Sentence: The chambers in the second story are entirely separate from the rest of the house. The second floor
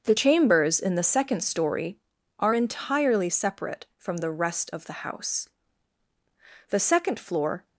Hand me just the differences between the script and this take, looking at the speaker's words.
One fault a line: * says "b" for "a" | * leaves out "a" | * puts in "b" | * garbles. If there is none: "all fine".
all fine